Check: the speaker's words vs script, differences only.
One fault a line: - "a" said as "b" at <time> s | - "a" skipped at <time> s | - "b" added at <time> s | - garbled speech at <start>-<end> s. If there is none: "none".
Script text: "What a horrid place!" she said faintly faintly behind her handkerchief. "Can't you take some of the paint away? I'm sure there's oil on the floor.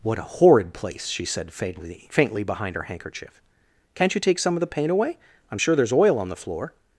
none